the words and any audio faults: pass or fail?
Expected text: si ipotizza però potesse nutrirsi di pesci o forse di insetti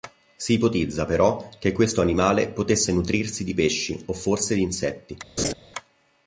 fail